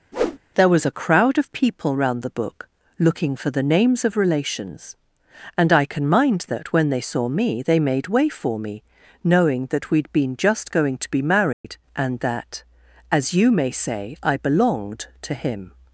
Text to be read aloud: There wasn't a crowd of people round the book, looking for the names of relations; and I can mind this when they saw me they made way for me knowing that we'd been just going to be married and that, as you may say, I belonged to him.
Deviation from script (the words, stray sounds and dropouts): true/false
true